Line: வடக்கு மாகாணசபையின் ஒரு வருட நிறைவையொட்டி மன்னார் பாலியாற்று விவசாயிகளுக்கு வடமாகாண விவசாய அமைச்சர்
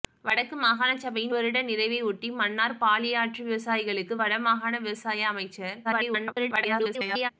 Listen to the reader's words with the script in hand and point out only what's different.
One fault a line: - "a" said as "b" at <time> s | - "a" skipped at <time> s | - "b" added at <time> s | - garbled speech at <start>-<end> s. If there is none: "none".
- "ஒரு" skipped at 1.4 s
- garbled speech at 5.8-7.3 s